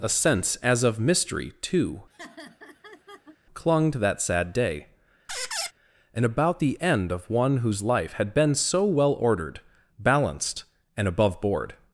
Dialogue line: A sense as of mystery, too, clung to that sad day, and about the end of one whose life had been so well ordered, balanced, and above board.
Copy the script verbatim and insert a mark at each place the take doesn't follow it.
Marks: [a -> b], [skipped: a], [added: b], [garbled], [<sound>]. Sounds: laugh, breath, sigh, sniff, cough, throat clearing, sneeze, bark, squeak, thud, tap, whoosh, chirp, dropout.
A sense as of mystery, too, [laugh] clung to that sad day, [squeak] and about the end of one whose life had been so well ordered, balanced, and above board.